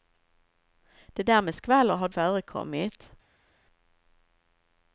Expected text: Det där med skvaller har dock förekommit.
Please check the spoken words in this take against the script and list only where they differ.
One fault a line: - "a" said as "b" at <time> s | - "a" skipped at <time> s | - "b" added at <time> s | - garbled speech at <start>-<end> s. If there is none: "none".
- "dock" skipped at 2.1 s